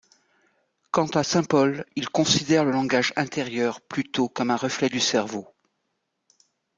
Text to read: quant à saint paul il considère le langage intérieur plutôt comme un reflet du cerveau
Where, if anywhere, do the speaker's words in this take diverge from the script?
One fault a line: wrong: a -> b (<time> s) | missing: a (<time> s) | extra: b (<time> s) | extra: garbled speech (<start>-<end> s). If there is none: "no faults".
no faults